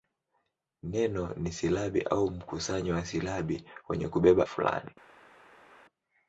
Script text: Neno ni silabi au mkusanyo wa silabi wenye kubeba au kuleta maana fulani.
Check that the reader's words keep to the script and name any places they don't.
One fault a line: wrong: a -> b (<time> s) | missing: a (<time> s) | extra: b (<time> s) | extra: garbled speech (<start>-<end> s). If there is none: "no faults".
missing: au kuleta maana (4.5 s)